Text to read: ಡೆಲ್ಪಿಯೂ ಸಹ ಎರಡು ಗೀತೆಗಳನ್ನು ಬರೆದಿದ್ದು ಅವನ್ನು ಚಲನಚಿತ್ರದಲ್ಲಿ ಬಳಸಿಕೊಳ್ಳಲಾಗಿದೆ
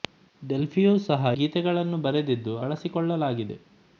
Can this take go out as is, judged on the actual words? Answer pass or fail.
fail